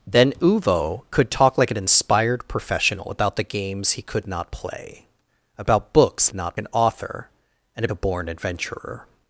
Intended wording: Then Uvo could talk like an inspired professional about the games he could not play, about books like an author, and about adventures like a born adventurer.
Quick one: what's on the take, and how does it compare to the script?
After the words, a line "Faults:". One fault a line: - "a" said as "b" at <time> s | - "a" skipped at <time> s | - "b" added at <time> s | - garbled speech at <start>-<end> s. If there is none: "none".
Then Uvo could talk like an inspired professional about the games he could not play, about books not an author, and a born adventurer.
Faults:
- "like" said as "not" at 6.3 s
- "about adventures like" skipped at 7.9 s